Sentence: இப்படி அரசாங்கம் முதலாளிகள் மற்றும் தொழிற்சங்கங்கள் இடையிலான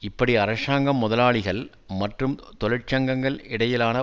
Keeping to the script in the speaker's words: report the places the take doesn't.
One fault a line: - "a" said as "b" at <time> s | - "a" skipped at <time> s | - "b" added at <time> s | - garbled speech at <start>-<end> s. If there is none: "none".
none